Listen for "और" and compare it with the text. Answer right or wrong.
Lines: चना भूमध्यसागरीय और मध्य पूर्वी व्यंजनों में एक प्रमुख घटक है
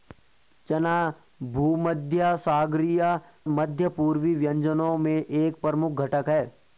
wrong